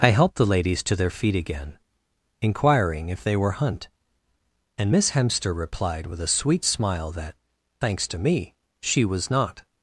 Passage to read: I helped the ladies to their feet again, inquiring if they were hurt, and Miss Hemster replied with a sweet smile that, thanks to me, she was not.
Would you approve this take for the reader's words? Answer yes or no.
no